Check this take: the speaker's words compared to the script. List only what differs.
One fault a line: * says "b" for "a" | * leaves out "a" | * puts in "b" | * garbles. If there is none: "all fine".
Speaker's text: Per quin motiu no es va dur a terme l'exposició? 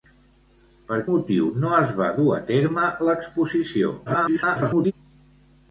* leaves out "quin"
* garbles